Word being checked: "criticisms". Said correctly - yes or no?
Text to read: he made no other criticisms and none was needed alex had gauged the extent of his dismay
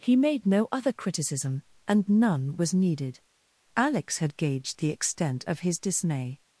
no